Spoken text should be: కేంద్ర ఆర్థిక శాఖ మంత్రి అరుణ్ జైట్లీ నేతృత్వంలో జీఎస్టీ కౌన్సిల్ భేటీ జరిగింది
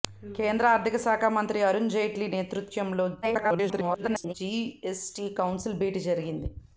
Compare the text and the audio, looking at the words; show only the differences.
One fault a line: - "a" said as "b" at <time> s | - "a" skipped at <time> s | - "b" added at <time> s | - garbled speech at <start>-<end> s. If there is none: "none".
- garbled speech at 3.2-4.3 s